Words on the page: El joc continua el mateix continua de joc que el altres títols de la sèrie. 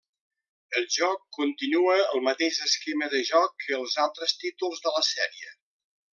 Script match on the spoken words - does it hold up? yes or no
no